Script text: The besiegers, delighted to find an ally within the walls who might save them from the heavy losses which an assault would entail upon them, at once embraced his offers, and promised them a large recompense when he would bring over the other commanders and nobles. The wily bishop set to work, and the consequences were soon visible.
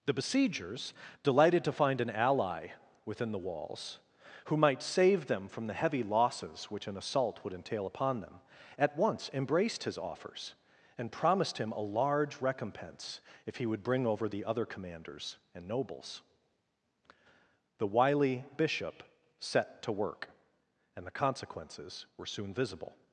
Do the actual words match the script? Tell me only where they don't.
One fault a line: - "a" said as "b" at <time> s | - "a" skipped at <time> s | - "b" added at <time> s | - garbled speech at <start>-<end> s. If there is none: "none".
- "them" said as "him" at 11.6 s
- "when" said as "if" at 13.4 s